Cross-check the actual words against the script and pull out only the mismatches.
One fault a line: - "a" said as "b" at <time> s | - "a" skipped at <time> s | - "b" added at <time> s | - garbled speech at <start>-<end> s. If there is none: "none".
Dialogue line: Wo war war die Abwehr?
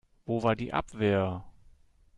- "war" skipped at 0.6 s